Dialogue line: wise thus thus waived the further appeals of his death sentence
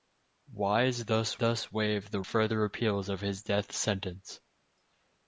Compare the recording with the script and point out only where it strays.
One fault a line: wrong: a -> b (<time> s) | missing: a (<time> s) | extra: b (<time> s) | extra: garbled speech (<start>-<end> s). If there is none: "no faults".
no faults